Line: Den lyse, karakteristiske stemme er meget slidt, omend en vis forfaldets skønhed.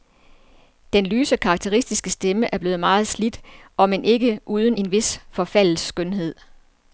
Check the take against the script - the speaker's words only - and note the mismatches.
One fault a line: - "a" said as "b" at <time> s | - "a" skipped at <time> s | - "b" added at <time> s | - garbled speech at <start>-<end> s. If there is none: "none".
- "blevet" added at 2.6 s
- "ikke uden" added at 4.0 s